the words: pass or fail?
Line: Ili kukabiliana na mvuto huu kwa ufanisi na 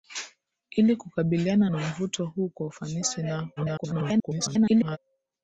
fail